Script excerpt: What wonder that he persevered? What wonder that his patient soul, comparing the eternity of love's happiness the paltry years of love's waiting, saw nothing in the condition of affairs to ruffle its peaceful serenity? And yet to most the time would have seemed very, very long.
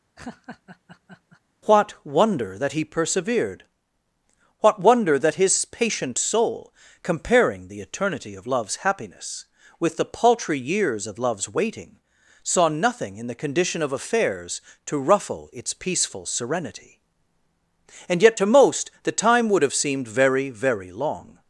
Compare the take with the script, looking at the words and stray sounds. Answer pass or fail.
fail